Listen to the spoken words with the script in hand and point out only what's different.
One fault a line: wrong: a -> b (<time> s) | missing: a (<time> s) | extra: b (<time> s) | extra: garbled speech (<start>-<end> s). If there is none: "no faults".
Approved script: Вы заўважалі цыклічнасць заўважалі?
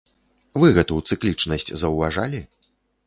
wrong: заўважалі -> гэту (0.8 s)